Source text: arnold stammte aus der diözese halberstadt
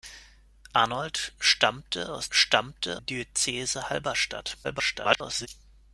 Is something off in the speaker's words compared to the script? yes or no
yes